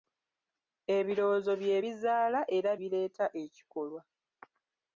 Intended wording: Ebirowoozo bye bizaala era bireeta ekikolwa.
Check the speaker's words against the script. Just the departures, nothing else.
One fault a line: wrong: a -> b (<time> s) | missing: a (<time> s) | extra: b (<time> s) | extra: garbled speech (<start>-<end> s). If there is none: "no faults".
no faults